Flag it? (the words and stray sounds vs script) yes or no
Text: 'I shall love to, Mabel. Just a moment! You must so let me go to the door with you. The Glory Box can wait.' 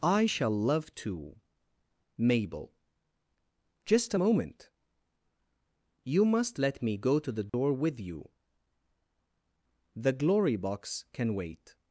yes